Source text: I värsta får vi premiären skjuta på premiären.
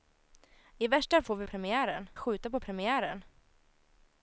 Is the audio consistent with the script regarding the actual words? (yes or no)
yes